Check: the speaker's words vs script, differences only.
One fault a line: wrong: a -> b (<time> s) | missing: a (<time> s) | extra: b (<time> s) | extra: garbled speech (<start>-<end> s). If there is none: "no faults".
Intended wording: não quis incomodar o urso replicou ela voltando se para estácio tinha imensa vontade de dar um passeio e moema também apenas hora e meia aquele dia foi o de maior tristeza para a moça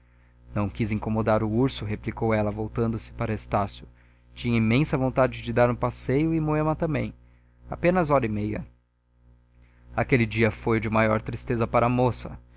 no faults